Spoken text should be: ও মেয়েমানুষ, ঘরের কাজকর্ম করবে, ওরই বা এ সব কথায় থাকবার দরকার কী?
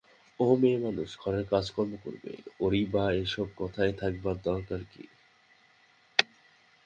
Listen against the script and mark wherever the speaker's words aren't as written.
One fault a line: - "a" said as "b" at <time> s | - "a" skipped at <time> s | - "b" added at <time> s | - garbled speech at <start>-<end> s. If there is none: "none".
none